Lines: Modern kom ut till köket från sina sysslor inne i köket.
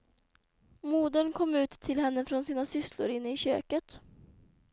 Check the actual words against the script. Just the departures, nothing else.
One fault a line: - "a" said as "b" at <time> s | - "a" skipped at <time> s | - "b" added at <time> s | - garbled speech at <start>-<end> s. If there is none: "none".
- "köket" said as "henne" at 2.0 s